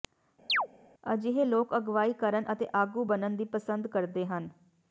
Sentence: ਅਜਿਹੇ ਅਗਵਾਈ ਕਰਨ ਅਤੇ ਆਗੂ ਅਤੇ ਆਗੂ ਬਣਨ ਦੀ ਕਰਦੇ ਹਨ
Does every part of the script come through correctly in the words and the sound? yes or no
no